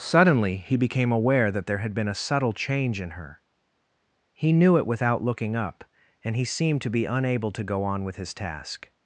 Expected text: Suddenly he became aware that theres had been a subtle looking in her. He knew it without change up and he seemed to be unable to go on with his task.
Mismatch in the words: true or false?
true